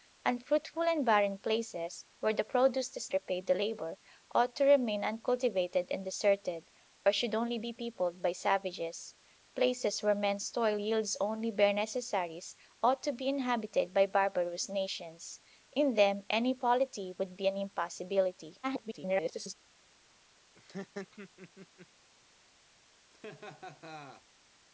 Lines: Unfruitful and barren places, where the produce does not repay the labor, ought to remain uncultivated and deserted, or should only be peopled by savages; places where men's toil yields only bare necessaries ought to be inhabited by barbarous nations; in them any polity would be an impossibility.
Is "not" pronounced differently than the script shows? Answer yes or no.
yes